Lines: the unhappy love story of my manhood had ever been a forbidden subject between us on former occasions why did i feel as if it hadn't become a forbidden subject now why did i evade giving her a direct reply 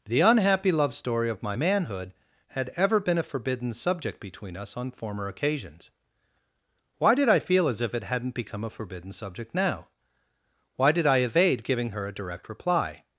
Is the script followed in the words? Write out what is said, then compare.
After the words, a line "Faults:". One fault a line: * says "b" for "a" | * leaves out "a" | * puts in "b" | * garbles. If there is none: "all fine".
the unhappy love story of my manhood had ever been a forbidden subject between us on former occasions why did i feel as if it hadn't become a forbidden subject now why did i evade giving her a direct reply
Faults:
all fine